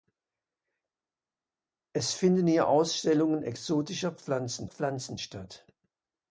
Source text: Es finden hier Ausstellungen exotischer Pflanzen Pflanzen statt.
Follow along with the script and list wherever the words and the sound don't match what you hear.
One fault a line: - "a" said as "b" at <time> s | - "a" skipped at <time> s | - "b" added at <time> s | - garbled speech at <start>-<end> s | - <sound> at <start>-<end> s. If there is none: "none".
none